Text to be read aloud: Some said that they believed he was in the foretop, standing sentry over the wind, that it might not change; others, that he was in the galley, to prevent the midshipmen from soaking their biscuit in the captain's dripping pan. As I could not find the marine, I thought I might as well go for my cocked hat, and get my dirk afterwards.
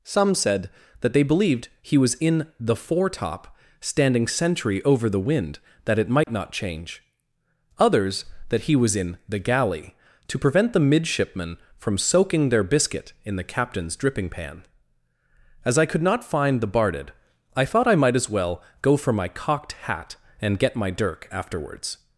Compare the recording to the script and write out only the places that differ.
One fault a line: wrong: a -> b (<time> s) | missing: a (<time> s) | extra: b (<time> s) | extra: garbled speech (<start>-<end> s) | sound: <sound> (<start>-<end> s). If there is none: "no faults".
sound: dropout (6.2-6.3 s)
wrong: marine -> barded (16.7 s)